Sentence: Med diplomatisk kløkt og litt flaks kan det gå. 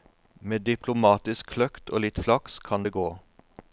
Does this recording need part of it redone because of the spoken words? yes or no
no